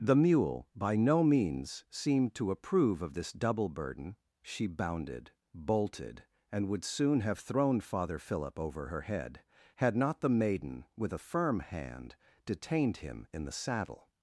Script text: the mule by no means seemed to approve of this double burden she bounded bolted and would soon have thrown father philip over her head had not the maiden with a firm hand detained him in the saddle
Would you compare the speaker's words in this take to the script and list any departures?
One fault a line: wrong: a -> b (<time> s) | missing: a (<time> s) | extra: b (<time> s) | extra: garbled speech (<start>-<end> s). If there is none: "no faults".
no faults